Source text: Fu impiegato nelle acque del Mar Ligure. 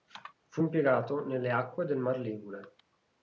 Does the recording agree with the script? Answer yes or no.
yes